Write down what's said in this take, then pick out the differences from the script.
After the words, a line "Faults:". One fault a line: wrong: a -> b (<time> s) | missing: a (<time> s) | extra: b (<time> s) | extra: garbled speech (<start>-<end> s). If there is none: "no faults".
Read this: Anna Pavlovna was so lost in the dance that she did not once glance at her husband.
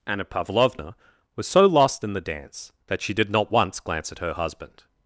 Anna Pavlovna was so lost in the dance that she did not once glance at her husband.
Faults:
no faults